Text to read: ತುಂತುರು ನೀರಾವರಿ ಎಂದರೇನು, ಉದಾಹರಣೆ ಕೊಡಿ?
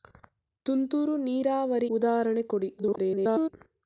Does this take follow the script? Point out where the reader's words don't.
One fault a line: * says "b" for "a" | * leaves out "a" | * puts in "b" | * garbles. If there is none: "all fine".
* leaves out "ಎಂದರೇನು"
* garbles